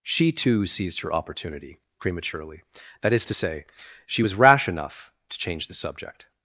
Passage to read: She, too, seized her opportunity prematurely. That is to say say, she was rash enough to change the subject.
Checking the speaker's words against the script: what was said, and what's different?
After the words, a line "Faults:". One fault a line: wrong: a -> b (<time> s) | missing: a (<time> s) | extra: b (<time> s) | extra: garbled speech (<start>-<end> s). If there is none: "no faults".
She, too, seized her opportunity prematurely. That is to say, she was rash enough to change the subject.
Faults:
missing: say (3.7 s)